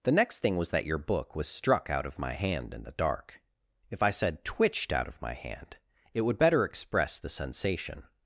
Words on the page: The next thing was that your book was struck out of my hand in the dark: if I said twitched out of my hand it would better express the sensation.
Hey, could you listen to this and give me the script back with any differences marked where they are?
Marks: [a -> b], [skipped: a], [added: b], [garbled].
The next thing was that your book was struck out of my hand in the dark: if I said twitched out of my hand it would better express the sensation.